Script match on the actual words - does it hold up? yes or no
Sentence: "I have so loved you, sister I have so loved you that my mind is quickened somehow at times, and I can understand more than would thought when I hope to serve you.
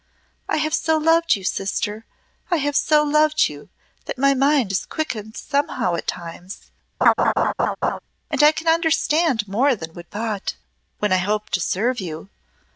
yes